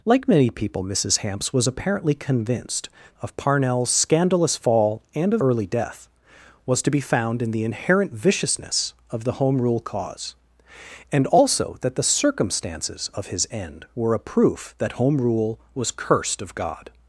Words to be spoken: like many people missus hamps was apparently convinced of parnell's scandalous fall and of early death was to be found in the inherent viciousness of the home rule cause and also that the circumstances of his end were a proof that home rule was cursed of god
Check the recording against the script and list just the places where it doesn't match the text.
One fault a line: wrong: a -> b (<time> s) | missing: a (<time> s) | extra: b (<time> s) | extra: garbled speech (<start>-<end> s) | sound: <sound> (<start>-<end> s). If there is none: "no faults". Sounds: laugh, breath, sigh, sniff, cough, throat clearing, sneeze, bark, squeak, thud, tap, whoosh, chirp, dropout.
no faults